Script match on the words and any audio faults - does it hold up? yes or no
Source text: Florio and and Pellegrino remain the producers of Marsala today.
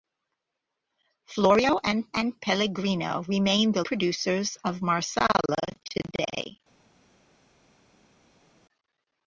yes